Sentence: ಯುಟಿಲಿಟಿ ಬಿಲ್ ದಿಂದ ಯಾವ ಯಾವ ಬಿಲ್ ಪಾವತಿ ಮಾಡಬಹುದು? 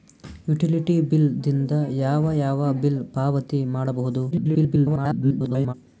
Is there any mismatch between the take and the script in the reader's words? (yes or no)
yes